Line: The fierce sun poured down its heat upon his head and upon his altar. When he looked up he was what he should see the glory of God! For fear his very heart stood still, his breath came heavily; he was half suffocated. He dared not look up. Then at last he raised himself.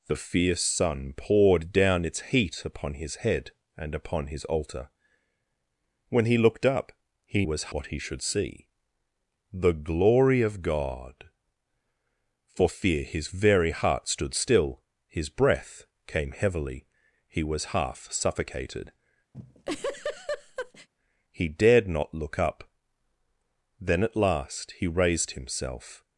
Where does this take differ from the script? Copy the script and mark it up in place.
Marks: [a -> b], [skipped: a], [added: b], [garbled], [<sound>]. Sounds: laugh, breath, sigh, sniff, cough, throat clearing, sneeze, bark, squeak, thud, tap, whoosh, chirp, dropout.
The fierce sun poured down its heat upon his head and upon his altar. When he looked up he was what he should see the glory of God! For fear his very heart stood still, his breath came heavily; he was half suffocated. [laugh] He dared not look up. Then at last he raised himself.